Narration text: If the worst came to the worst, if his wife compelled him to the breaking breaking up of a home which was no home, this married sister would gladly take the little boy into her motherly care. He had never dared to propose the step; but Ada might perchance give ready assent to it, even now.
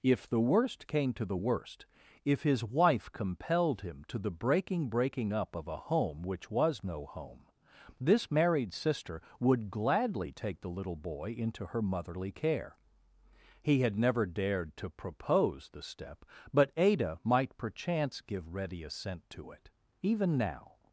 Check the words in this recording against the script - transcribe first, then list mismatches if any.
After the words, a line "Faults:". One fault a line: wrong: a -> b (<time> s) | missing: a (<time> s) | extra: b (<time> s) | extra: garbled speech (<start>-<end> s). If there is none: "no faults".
If the worst came to the worst, if his wife compelled him to the breaking breaking up of a home which was no home, this married sister would gladly take the little boy into her motherly care. He had never dared to propose the step; but Ada might perchance give ready assent to it, even now.
Faults:
no faults